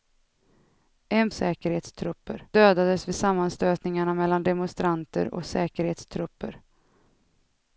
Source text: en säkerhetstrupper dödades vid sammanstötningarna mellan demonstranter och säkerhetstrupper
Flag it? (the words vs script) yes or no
no